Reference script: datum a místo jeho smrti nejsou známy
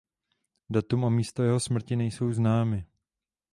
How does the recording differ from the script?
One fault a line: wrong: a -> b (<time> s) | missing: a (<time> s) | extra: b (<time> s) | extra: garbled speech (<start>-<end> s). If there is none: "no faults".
no faults